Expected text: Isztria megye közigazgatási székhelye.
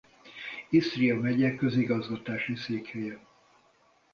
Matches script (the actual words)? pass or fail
pass